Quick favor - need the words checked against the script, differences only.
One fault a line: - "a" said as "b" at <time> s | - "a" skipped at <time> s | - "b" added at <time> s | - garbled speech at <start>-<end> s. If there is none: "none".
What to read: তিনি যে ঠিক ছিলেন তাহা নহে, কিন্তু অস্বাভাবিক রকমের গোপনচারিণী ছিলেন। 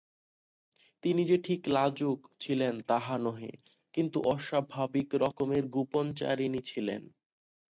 - "লাজুক" added at 1.7 s